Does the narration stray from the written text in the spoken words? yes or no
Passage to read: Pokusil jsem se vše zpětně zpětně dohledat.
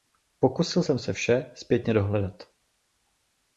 yes